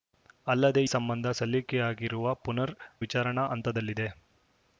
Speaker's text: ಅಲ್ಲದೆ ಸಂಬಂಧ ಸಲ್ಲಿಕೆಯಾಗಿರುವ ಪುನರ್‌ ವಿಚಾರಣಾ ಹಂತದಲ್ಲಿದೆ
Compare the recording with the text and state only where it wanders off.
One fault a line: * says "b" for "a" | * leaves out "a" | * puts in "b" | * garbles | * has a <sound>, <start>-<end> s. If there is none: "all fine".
all fine